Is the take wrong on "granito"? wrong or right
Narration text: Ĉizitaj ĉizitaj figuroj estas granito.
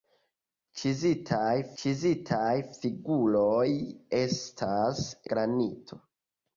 right